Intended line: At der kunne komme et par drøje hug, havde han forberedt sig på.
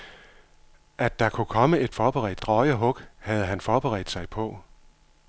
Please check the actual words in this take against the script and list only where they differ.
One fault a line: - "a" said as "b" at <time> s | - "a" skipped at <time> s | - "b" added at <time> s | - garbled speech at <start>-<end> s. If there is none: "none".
- "par" said as "forberedt" at 1.9 s